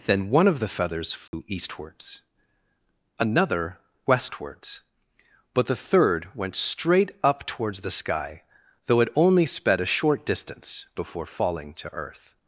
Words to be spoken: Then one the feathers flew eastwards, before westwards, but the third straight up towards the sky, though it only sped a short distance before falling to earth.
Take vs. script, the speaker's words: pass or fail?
fail